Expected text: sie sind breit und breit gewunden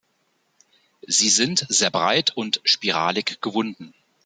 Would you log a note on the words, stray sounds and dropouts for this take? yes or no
yes